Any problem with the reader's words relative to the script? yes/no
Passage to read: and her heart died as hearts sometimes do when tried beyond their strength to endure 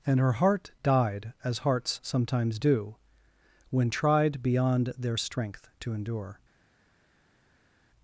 no